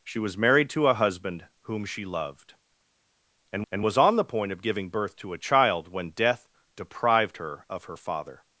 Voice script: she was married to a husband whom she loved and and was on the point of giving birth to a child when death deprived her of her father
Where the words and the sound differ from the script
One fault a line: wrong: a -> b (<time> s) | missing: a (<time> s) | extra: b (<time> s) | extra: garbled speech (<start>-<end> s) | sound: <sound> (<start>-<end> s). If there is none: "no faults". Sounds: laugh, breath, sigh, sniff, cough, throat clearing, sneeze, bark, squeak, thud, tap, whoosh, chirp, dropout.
no faults